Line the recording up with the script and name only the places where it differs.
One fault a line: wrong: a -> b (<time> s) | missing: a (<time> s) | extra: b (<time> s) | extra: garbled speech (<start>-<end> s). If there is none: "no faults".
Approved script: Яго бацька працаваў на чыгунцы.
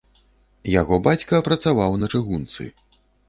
no faults